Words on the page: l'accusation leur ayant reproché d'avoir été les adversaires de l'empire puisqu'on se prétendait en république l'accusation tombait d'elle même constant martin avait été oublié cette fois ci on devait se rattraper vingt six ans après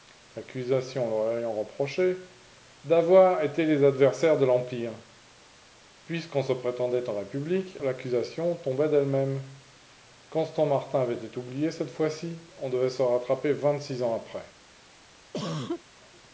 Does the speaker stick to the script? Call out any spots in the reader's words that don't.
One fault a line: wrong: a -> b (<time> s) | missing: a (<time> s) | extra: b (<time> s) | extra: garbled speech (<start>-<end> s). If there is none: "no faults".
no faults